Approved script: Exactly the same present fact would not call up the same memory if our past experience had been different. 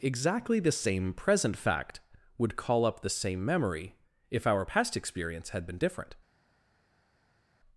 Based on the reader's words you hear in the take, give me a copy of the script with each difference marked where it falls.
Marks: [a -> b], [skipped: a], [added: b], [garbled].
Exactly the same present fact would [skipped: not] call up the same memory if our past experience had been different.